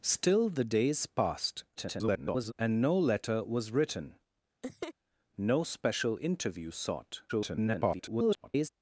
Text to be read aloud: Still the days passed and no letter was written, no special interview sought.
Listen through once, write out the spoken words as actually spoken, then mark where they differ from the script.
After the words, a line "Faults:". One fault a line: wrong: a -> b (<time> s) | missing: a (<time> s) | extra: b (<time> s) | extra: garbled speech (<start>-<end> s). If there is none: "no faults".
Still the days passed [garbled] and no letter was written, no special interview sought. [garbled]
Faults:
extra: garbled speech (1.8-2.5 s)
extra: garbled speech (7.3-8.7 s)